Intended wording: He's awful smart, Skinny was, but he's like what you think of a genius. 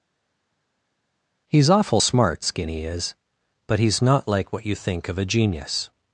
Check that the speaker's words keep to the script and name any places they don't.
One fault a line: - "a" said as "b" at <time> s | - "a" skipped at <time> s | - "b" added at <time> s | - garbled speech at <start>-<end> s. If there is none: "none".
- "was" said as "is" at 2.8 s
- "not" added at 4.0 s